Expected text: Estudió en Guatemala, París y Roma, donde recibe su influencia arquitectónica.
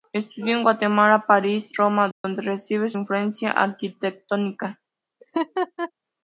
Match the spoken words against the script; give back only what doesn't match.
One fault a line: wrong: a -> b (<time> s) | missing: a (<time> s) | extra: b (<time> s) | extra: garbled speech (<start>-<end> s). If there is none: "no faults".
missing: y (1.7 s)
missing: su (2.9 s)